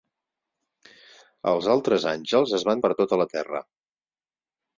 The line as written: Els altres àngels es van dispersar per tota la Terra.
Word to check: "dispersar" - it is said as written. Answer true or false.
false